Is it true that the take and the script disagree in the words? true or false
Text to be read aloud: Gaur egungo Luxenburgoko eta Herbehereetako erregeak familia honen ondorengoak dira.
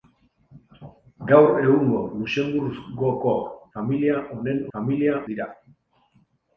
true